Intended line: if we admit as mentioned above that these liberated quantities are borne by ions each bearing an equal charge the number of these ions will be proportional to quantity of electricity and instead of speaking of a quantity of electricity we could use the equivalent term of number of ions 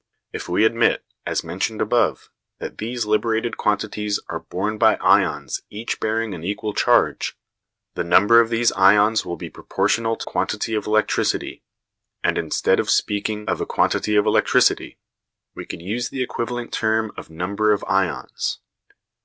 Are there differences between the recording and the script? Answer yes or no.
no